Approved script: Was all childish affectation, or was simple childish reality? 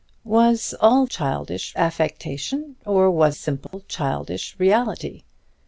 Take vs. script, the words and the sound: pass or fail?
fail